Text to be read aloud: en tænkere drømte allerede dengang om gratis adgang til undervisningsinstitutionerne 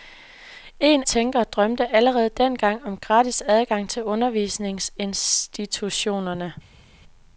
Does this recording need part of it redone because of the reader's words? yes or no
no